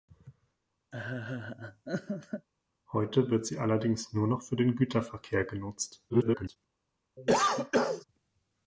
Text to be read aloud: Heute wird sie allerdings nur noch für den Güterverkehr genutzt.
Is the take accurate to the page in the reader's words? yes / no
no